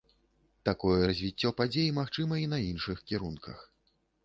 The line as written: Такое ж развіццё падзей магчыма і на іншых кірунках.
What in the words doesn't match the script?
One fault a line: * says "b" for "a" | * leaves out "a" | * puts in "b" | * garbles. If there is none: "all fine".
* leaves out "ж"